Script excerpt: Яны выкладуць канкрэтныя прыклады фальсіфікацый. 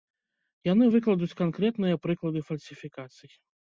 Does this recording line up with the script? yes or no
yes